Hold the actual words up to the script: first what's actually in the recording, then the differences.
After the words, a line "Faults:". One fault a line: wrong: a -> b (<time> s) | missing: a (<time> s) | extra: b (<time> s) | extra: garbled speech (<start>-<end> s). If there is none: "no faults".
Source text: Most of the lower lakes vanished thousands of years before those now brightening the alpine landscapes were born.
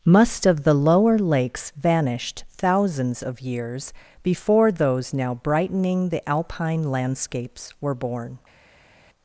Must of the lower lakes vanished thousands of years before those now brightening the alpine landscapes were born.
Faults:
wrong: Most -> Must (0.1 s)